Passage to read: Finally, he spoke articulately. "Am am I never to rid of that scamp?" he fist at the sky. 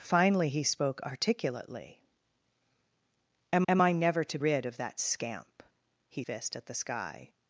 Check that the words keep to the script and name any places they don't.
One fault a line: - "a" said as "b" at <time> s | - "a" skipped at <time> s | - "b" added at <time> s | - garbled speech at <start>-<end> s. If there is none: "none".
none